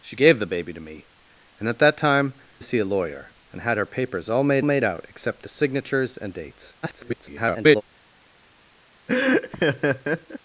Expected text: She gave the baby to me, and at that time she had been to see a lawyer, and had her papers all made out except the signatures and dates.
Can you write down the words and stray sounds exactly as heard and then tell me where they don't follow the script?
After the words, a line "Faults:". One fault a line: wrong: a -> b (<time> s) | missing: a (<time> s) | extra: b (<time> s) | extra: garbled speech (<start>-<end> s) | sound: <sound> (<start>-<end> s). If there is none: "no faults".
She gave the baby to me, and at that time to see a lawyer, and had her papers all made made out except the signatures and dates. [garbled]
Faults:
missing: she had been (2.3 s)
extra: made (4.6 s)
extra: garbled speech (6.8-7.8 s)
sound: laugh (9.1-10.4 s)